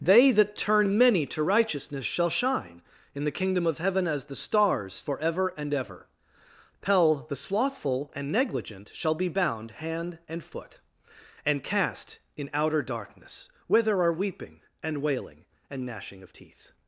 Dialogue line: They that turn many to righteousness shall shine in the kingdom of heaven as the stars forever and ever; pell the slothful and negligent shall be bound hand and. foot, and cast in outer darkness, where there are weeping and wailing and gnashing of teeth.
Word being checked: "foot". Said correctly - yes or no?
yes